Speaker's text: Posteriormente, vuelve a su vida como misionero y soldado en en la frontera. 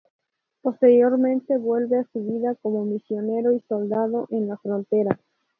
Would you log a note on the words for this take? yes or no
yes